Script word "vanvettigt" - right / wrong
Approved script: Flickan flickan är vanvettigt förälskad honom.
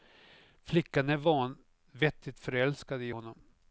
right